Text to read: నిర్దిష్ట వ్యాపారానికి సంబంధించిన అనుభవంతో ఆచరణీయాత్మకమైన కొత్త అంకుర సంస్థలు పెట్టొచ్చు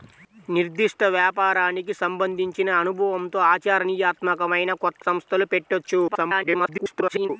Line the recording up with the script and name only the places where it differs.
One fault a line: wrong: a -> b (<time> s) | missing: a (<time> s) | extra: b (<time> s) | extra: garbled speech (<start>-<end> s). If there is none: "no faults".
missing: అంకుర (5.0 s)
extra: garbled speech (6.1-7.3 s)